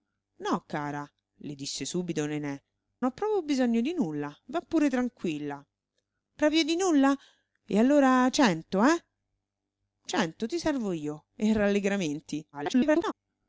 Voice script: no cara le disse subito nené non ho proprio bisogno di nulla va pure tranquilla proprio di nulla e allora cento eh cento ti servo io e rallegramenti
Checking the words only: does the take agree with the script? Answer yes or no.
no